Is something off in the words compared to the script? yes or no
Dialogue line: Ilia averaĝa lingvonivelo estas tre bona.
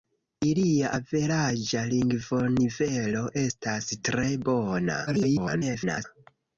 yes